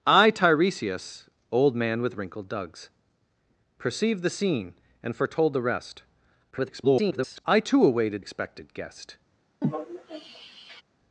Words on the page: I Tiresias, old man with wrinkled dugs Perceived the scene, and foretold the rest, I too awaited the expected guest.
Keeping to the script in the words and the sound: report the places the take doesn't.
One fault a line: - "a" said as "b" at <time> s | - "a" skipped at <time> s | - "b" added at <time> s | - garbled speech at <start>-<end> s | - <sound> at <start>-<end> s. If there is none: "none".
- garbled speech at 6.5-7.4 s
- "the" skipped at 8.2 s
- sigh at 9.6-10.8 s